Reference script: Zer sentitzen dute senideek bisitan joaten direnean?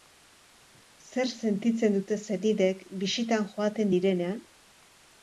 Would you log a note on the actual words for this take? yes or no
no